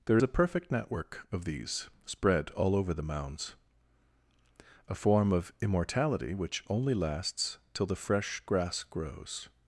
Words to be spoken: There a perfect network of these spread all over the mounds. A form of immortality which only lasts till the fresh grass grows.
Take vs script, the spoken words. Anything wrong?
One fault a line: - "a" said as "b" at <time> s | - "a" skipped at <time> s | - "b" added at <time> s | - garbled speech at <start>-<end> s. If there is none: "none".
none